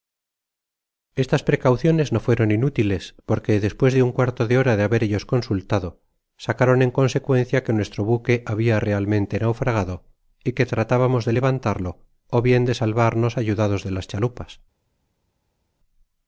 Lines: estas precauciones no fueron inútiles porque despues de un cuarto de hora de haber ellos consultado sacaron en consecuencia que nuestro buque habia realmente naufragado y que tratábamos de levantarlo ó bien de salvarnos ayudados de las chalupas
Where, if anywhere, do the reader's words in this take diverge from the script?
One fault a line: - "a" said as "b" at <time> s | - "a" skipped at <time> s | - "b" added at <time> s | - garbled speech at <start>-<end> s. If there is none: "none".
none